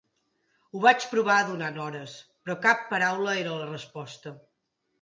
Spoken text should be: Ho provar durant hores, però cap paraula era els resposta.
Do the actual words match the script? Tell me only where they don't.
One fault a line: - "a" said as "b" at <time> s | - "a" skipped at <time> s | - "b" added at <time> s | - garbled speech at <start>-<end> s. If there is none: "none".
- "vaig" added at 0.8 s
- "els" said as "la" at 3.6 s